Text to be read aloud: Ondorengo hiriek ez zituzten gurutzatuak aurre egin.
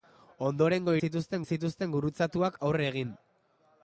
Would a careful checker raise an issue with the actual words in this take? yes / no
yes